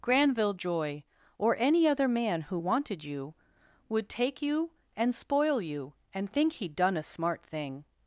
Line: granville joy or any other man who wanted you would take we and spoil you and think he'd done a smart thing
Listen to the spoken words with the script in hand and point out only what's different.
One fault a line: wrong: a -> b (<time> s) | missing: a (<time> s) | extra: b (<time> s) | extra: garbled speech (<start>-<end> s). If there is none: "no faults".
wrong: we -> you (4.4 s)